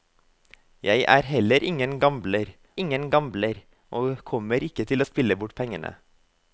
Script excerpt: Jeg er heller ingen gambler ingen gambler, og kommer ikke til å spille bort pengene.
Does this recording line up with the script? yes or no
yes